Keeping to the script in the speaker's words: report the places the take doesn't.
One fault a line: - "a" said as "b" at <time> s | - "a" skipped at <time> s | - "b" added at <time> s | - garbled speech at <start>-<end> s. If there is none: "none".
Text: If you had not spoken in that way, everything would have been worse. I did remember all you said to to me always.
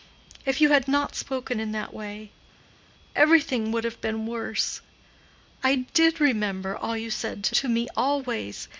none